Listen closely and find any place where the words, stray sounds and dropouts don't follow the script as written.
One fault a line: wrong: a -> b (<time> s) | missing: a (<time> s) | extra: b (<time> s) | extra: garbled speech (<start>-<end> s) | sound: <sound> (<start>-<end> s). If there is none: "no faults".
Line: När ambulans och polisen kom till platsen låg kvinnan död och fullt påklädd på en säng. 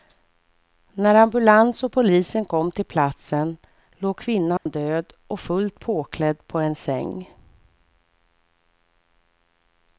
sound: dropout (4.6-4.7 s)